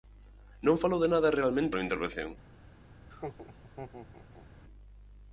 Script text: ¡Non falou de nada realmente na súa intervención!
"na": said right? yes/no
no